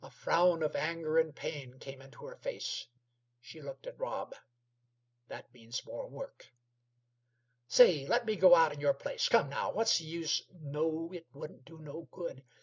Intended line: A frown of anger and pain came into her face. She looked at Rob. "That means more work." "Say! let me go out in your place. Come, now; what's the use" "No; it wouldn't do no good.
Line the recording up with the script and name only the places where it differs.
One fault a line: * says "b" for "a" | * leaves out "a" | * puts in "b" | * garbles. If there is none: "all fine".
all fine